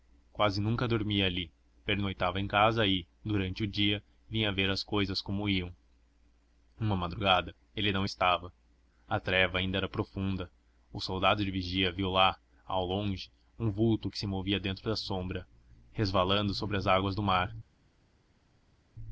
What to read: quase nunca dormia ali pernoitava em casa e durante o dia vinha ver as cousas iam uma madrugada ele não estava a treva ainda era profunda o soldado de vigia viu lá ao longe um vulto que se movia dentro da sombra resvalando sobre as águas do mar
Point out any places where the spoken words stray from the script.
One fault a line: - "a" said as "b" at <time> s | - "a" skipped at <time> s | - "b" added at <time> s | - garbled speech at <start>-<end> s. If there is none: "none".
- "como" added at 5.2 s